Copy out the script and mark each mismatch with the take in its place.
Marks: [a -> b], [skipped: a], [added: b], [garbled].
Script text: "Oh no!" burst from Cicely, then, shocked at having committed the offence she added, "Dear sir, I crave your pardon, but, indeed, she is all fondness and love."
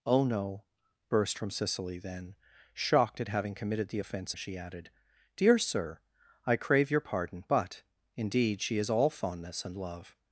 "Oh no!" burst from Cicely, then, shocked at having committed the offence she added, "Dear sir, I crave your pardon, but, indeed, she is all fondness and love."